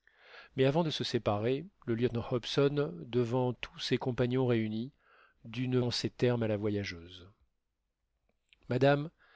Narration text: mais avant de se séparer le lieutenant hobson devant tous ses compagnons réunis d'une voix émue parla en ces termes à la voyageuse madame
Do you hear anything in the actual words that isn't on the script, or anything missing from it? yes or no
yes